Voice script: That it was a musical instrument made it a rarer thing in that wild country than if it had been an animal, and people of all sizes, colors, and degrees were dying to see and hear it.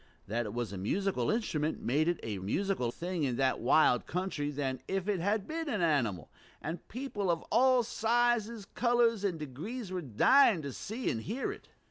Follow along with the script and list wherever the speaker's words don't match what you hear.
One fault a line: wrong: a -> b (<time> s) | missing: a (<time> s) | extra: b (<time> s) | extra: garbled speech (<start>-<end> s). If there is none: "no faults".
wrong: rarer -> musical (2.4 s)